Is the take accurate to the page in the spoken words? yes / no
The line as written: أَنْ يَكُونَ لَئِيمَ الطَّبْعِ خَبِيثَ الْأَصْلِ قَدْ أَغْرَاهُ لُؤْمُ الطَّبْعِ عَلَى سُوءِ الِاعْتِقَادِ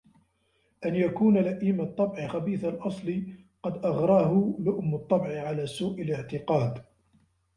yes